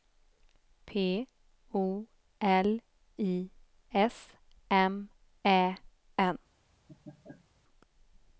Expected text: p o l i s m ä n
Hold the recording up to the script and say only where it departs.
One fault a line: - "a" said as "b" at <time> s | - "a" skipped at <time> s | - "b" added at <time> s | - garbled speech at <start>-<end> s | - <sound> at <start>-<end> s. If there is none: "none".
- laugh at 6.9-7.5 s